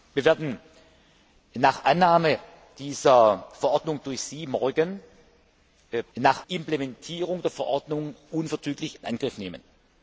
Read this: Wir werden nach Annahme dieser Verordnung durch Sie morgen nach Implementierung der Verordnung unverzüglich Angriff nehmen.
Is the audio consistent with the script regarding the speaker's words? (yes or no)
yes